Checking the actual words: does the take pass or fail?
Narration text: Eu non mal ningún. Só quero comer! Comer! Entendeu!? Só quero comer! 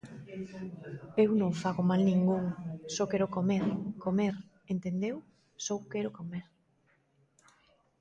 fail